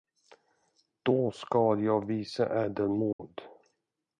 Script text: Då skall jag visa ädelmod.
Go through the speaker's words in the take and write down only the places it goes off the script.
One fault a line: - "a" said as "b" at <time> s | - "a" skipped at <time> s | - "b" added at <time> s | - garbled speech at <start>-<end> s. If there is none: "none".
none